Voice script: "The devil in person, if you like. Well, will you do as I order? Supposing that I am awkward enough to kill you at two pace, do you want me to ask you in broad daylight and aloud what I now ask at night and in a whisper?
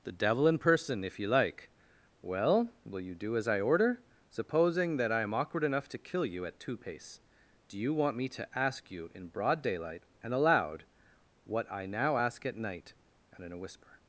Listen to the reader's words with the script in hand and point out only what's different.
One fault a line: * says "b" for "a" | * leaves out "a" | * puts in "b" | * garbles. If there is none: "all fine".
all fine